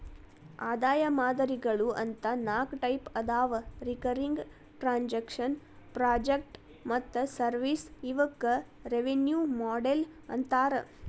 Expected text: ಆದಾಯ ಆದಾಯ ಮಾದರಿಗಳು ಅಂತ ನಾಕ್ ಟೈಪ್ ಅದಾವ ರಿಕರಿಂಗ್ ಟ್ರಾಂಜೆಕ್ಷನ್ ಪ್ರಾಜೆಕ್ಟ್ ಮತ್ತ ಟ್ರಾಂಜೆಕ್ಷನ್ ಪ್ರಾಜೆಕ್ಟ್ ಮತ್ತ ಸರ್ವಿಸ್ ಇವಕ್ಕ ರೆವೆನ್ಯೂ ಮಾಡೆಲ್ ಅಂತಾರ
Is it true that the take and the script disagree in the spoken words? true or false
true